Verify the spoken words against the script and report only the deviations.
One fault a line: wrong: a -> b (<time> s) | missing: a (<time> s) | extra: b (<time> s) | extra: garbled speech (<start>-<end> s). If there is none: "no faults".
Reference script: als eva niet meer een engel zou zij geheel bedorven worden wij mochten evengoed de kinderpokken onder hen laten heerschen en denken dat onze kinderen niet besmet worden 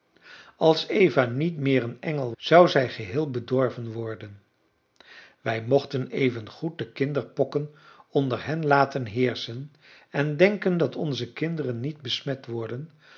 no faults